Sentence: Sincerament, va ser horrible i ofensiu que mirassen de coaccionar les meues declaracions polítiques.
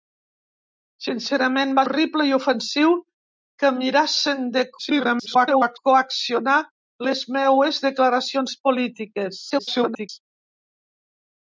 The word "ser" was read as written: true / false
false